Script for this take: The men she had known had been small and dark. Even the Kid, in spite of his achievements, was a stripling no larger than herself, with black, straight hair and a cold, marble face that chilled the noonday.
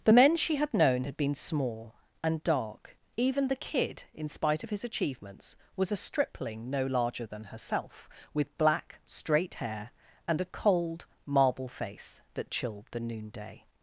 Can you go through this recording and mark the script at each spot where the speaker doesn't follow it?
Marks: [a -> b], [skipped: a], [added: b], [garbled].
The men she had known had been small and dark. Even the Kid, in spite of his achievements, was a stripling no larger than herself, with black, straight hair and a cold, marble face that chilled the noonday.